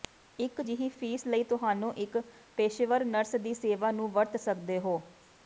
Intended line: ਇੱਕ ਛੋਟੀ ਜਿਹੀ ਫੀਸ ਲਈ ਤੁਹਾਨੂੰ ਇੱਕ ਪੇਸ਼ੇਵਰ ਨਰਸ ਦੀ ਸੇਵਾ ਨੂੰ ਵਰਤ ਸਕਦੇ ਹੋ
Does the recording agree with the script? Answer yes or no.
no